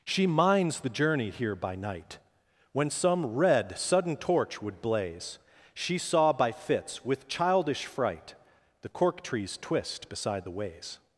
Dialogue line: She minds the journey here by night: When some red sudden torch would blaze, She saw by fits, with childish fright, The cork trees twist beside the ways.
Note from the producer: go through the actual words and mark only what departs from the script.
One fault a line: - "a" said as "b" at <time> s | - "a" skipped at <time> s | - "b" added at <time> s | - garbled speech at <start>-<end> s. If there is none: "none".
none